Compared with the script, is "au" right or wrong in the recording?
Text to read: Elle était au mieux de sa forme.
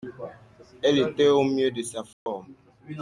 right